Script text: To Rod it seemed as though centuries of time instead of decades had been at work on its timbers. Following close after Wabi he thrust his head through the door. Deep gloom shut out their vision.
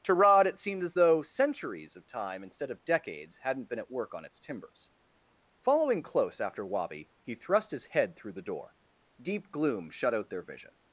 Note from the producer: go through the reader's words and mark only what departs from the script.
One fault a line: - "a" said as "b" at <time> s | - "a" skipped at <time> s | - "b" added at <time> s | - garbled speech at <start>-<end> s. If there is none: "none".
- "had" said as "hadn't" at 3.4 s